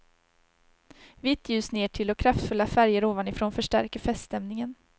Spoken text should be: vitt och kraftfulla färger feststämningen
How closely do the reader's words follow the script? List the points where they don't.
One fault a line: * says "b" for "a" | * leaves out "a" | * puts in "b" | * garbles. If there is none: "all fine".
* puts in "ljus nertill"
* puts in "ovanifrån förstärker"